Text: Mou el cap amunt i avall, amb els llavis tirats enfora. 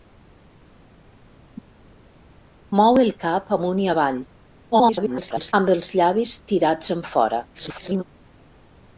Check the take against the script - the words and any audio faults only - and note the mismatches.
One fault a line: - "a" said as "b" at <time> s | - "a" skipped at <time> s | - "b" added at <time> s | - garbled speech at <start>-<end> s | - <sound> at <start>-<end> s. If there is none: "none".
- garbled speech at 4.7-5.5 s
- garbled speech at 7.5-8.0 s